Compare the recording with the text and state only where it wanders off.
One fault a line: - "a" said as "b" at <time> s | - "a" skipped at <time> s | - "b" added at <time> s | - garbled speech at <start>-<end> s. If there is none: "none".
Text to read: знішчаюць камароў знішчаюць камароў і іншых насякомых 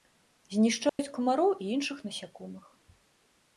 - "знішчаюць камароў" skipped at 1.5 s